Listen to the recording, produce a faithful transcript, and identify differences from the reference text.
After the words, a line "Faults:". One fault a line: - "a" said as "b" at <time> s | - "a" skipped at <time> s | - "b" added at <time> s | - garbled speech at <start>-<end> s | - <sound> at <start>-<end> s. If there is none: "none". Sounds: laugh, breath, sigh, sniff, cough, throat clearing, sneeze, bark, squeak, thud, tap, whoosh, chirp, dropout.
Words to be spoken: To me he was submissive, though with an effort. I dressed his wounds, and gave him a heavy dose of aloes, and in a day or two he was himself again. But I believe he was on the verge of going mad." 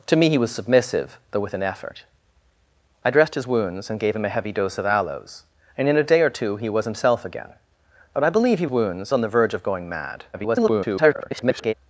To me he was submissive, though with an effort. I dressed his wounds, and gave him a heavy dose of aloes, and in a day or two he was himself again. But I believe he wounds on the verge of going mad." [garbled]
Faults:
- "was" said as "wounds" at 8.7 s
- garbled speech at 10.3-11.7 s